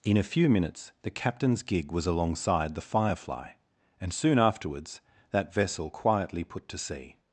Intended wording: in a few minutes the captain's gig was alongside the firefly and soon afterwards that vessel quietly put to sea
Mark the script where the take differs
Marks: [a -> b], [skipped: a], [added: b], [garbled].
in a few minutes the captain's gig was alongside the firefly and soon afterwards that vessel quietly put to sea